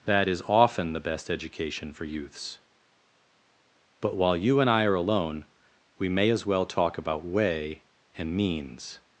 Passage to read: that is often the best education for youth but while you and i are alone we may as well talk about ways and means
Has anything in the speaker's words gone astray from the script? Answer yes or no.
yes